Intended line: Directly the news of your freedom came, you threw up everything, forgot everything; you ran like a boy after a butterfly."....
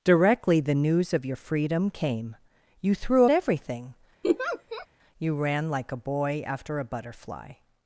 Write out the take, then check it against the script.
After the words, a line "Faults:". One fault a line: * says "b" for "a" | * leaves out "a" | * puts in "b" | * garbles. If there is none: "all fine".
Directly the news of your freedom came, you threw everything; you ran like a boy after a butterfly."....
Faults:
* leaves out "up everything forgot"